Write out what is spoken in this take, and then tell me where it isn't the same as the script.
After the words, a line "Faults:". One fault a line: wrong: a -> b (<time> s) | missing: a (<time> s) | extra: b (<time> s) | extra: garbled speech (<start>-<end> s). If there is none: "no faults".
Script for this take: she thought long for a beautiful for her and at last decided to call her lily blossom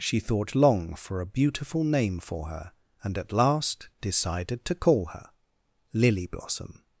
she thought long for a beautiful name for her and at last decided to call her lily blossom
Faults:
extra: name (1.8 s)